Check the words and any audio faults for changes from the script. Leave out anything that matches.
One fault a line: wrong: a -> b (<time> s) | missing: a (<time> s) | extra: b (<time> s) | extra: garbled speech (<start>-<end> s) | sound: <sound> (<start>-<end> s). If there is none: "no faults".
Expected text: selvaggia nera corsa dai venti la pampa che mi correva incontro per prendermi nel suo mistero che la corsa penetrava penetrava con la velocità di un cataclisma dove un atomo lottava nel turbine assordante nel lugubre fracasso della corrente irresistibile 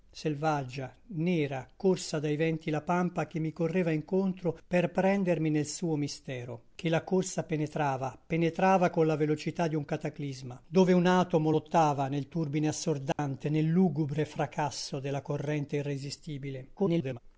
sound: dropout (13.1-13.2 s)
extra: garbled speech (16.8-17.2 s)